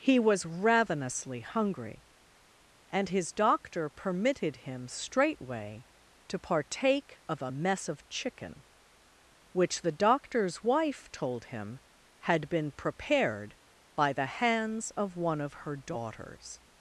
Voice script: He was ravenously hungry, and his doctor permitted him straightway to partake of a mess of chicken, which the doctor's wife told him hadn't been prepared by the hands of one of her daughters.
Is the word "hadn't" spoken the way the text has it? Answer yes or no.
no